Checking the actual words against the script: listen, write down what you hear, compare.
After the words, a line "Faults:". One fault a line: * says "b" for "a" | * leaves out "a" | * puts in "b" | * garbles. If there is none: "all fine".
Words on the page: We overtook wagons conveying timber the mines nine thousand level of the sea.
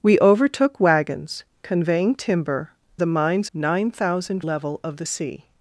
We overtook wagons conveying timber the mines nine thousand level of the sea.
Faults:
all fine